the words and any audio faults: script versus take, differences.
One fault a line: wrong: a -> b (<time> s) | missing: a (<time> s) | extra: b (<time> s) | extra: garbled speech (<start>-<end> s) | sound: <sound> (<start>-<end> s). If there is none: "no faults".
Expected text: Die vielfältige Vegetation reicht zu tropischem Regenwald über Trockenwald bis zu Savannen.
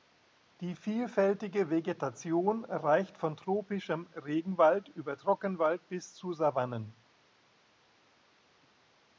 wrong: zu -> von (3.2 s)